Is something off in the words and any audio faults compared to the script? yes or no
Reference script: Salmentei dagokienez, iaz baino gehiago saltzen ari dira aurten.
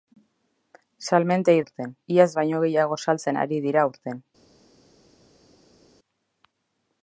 yes